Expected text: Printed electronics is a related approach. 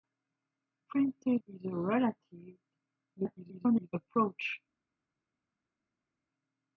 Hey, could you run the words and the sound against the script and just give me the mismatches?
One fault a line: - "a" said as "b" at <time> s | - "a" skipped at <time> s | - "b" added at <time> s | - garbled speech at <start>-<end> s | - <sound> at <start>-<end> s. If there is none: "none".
- "electronics" skipped at 1.4 s
- garbled speech at 3.2-3.9 s